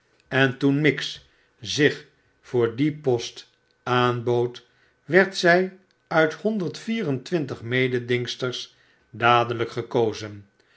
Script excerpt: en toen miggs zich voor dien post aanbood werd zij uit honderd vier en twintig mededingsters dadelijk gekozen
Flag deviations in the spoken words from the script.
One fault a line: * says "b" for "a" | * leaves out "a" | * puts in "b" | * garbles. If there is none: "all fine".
all fine